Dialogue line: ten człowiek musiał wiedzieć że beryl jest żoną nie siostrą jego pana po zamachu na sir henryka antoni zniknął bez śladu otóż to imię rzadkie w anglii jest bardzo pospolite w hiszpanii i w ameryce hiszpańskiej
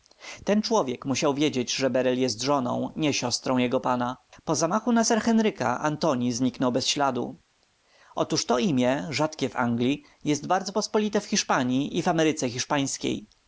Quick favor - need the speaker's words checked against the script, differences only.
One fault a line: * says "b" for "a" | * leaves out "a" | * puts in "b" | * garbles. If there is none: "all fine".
all fine